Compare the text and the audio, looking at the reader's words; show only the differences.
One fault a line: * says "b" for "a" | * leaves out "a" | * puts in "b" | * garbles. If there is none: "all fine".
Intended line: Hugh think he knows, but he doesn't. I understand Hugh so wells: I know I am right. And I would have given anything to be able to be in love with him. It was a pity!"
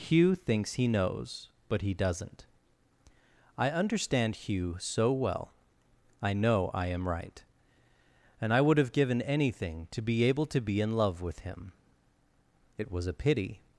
* says "thinks" for "think"
* says "well" for "wells"